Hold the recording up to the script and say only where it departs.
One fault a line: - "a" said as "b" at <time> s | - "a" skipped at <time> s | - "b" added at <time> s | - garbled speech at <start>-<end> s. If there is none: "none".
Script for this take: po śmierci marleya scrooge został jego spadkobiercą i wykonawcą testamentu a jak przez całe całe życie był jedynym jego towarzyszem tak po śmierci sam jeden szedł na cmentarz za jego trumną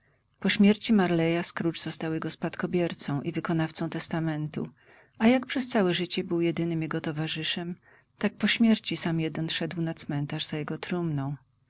- "całe" skipped at 5.9 s